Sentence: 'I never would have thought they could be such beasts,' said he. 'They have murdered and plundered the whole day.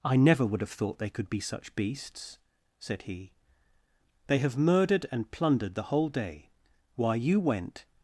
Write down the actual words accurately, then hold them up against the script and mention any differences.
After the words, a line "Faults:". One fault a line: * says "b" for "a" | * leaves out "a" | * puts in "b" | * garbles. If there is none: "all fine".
'I never would have thought they could be such beasts,' said he. 'They have murdered and plundered the whole day. Why you went
Faults:
* puts in "Why you went"